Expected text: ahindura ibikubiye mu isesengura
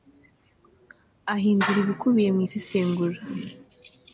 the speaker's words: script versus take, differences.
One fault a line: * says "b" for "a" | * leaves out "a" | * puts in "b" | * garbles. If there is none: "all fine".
all fine